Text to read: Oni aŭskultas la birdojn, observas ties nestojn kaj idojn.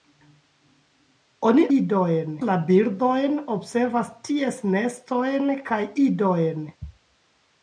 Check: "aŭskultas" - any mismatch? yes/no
yes